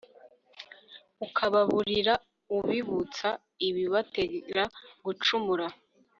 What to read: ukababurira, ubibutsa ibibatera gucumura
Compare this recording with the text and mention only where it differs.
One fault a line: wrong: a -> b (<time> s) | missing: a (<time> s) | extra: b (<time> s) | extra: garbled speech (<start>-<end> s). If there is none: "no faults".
no faults